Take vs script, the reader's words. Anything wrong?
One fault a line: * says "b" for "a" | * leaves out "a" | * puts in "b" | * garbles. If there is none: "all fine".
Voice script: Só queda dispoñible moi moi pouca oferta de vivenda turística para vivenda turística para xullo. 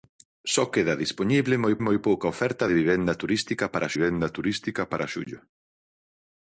all fine